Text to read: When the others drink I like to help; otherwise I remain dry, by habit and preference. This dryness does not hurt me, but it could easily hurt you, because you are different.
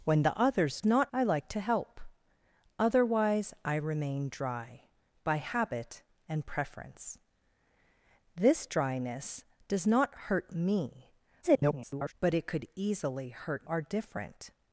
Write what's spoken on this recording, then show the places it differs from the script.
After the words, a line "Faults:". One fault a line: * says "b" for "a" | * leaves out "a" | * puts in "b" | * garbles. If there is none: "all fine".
When the others not I like to help; otherwise I remain dry, by habit and preference. This dryness does not hurt me, [garbled] but it could easily hurt are different.
Faults:
* says "not" for "drink"
* garbles
* leaves out "you because you"